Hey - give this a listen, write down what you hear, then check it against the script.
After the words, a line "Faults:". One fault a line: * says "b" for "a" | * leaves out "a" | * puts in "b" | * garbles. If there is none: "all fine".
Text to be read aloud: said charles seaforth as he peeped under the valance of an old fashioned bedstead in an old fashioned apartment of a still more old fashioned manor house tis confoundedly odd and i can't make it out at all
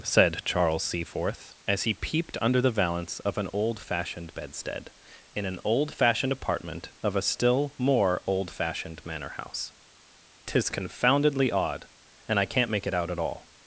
said charles seaforth as he peeped under the valance of an old fashioned bedstead in an old fashioned apartment of a still more old fashioned manor house tis confoundedly odd and i can't make it out at all
Faults:
all fine